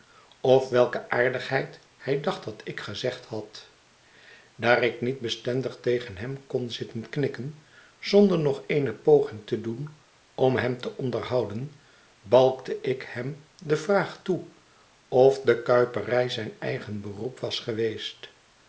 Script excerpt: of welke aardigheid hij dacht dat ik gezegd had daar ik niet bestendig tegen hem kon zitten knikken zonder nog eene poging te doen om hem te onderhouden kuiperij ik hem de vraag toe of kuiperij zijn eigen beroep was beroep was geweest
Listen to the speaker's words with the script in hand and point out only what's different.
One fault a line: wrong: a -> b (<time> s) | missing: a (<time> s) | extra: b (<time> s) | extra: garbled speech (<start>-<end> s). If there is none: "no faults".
wrong: kuiperij -> balkte (12.2 s)
extra: de (15.4 s)
missing: beroep was (17.6 s)